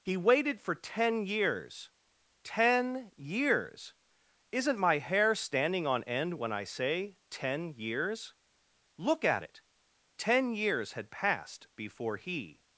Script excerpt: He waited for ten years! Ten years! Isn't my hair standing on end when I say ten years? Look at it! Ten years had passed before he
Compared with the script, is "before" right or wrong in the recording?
right